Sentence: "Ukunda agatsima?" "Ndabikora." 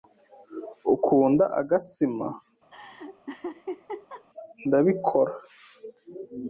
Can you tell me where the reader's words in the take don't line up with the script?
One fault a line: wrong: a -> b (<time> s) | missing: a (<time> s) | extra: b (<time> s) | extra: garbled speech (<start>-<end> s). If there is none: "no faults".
no faults